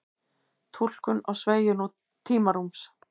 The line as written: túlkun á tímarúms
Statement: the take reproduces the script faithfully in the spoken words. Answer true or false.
false